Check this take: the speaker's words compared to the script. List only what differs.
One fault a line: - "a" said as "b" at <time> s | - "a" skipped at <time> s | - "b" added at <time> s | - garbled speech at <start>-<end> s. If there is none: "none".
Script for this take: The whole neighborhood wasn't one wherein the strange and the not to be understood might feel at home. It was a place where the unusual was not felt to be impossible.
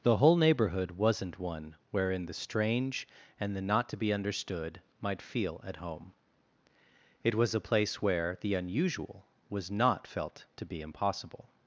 none